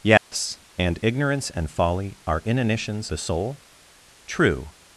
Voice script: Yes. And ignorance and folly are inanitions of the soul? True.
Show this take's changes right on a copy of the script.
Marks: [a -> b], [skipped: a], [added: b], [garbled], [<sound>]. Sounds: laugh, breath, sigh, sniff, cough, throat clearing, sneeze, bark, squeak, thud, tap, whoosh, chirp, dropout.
Yes. [dropout] And ignorance and folly are inanitions [skipped: of] the soul? True.